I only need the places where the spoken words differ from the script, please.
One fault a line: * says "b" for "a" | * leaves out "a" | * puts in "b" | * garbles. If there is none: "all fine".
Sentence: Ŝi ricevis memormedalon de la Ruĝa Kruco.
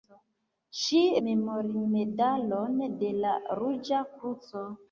* leaves out "ricevis"